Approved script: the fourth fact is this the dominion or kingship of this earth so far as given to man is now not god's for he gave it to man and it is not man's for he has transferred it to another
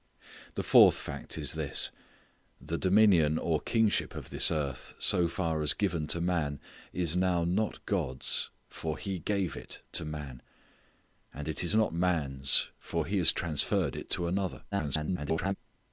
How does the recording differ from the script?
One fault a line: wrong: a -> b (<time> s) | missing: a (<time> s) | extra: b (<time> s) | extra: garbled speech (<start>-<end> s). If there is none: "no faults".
extra: garbled speech (14.7-15.6 s)